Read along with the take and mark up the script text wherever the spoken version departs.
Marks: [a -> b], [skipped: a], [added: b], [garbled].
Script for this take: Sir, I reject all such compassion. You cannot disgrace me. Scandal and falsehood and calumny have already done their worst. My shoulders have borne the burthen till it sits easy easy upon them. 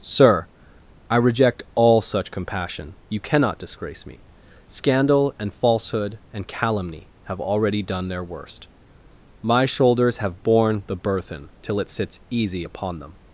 Sir, I reject all such compassion. You cannot disgrace me. Scandal and falsehood and calumny have already done their worst. My shoulders have borne the burthen till it sits easy [skipped: easy] upon them.